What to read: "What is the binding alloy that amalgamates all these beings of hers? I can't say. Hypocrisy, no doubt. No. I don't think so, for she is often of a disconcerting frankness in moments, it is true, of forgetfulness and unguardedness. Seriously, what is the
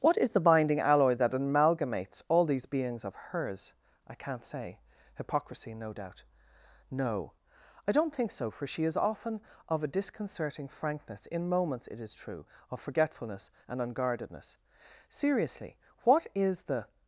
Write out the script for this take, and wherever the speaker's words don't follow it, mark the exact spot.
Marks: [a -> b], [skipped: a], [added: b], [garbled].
"What is the binding alloy that amalgamates all these beings of hers? I can't say. Hypocrisy, no doubt. No. I don't think so, for she is often of a disconcerting frankness in moments, it is true, of forgetfulness and unguardedness. Seriously, what is the